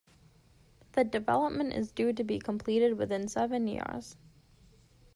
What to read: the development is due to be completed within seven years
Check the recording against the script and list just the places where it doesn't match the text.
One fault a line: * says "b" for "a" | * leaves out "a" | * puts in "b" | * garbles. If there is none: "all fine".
all fine